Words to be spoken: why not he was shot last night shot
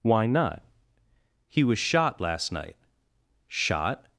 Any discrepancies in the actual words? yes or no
no